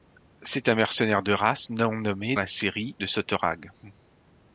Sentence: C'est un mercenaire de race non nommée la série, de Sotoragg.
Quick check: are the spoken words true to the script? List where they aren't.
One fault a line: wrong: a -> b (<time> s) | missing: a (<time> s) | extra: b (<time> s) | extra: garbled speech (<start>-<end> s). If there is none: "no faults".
no faults